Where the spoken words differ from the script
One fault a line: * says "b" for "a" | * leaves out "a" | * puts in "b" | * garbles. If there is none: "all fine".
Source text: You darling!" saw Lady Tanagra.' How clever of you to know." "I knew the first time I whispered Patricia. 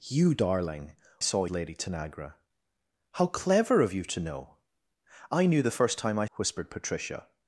all fine